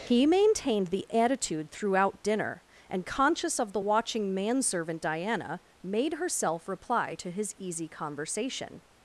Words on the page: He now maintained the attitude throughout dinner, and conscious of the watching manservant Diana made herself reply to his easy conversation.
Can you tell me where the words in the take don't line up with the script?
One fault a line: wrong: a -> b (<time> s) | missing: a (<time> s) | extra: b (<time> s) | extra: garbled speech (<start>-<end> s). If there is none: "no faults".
missing: now (0.2 s)